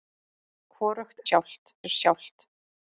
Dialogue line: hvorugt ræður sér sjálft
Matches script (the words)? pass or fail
fail